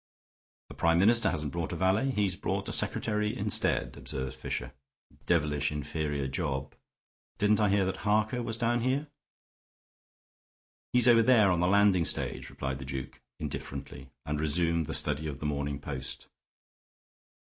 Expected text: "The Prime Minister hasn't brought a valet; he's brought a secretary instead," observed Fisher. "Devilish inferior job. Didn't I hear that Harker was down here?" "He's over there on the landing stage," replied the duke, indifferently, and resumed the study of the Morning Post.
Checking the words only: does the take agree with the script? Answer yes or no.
yes